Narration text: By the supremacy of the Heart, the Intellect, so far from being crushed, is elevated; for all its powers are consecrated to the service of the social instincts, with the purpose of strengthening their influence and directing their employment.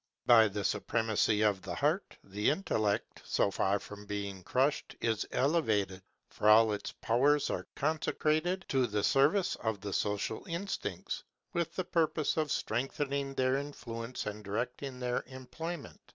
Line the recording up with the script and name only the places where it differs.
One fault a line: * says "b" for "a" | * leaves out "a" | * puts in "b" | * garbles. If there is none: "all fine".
all fine